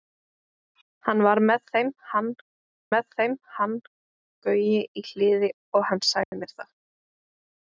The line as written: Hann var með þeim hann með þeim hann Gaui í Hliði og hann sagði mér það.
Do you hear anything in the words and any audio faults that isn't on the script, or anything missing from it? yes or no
yes